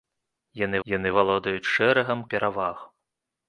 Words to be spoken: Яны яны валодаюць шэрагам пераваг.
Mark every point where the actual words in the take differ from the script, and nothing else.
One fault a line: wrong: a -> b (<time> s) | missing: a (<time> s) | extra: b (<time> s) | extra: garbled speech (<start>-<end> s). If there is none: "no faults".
no faults